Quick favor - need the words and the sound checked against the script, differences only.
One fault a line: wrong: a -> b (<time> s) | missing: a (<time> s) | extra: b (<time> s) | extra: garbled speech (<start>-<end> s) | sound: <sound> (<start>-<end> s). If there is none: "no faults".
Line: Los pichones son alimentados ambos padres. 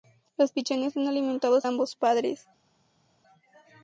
no faults